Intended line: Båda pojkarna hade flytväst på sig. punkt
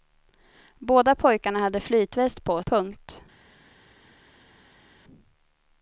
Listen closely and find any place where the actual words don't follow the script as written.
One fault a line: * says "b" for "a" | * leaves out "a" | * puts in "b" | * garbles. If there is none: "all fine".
* leaves out "sig"